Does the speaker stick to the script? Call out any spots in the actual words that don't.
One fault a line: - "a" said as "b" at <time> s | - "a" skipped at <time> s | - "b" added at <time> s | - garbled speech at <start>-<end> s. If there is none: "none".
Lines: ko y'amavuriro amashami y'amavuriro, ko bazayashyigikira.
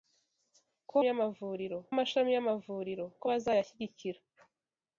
none